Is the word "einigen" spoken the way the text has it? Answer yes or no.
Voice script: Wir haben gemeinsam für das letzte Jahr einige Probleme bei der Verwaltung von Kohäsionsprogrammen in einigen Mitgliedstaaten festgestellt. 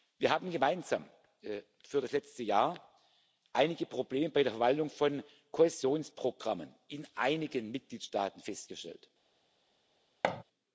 yes